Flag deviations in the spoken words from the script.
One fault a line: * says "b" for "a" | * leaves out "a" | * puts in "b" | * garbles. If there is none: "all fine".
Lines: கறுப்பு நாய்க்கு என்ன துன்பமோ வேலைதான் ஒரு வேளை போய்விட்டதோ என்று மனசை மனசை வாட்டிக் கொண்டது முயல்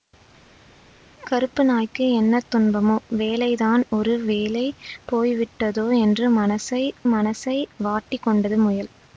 all fine